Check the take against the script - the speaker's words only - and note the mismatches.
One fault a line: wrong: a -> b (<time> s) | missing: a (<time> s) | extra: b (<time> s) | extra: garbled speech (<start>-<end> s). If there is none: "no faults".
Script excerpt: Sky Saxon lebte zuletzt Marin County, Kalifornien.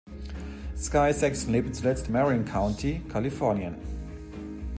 no faults